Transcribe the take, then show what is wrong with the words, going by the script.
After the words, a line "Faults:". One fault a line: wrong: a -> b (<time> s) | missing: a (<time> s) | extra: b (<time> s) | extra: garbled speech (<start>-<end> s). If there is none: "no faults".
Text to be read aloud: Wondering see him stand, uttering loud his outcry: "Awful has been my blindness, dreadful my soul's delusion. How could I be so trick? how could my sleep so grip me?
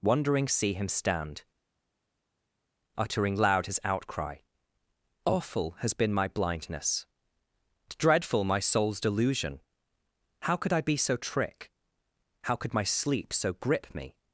Wondering see him stand, uttering loud his outcry: "Awful has been my blindness, dreadful my soul's delusion. How could I be so trick? how could my sleep so grip me?
Faults:
no faults